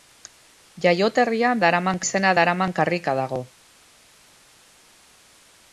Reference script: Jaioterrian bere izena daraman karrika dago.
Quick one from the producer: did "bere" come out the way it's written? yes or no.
no